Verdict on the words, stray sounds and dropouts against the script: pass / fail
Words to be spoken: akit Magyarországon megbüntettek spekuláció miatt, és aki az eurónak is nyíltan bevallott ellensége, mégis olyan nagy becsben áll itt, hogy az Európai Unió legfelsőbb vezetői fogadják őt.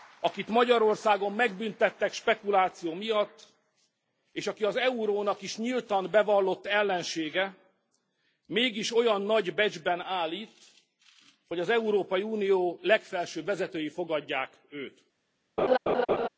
fail